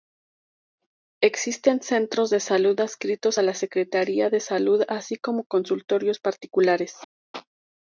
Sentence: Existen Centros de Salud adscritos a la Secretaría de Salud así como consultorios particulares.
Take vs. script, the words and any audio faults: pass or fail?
pass